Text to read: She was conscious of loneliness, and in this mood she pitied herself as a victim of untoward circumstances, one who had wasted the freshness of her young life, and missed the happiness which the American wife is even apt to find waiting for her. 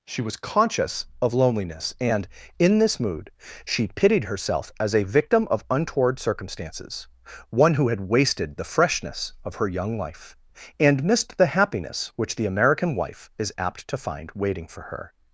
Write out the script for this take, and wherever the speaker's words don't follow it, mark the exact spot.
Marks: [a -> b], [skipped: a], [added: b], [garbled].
She was conscious of loneliness, and in this mood she pitied herself as a victim of untoward circumstances, one who had wasted the freshness of her young life, and missed the happiness which the American wife is [skipped: even] apt to find waiting for her.